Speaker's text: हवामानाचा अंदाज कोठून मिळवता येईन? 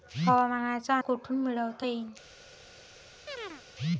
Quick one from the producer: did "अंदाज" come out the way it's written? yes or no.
no